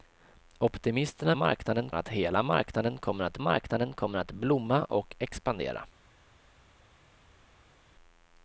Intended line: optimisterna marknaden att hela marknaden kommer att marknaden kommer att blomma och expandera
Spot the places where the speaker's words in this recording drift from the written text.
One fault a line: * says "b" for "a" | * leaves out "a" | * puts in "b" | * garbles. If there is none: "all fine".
all fine